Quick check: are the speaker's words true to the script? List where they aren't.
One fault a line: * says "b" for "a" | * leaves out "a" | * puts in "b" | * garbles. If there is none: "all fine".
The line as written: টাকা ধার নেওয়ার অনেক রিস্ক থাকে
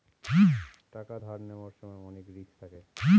* puts in "সময়"